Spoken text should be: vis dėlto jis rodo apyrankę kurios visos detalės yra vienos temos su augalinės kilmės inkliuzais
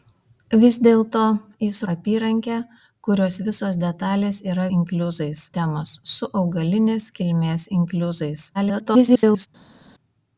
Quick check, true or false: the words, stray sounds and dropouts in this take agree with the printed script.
false